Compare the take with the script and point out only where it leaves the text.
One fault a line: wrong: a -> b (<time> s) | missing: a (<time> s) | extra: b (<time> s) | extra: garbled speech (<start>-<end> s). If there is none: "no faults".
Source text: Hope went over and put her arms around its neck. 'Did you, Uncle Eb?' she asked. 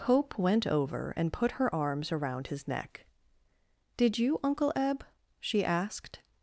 wrong: its -> his (2.5 s)